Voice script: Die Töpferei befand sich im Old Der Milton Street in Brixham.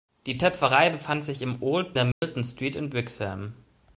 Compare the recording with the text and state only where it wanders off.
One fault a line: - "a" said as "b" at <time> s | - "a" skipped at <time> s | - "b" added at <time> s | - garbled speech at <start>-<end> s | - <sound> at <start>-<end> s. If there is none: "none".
- dropout at 2.1-2.2 s